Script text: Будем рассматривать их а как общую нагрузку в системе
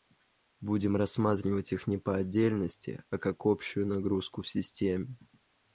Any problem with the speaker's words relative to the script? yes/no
yes